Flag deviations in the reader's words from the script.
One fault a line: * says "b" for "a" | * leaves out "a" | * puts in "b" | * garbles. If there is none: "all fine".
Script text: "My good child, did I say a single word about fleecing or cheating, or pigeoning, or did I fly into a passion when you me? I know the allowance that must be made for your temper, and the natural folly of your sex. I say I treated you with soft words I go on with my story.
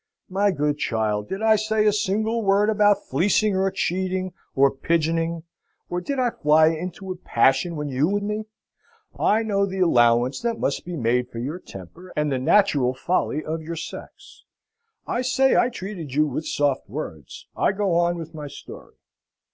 all fine